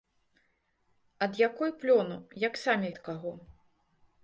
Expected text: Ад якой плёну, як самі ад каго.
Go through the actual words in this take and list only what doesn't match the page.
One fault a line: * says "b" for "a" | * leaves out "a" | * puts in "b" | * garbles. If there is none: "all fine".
all fine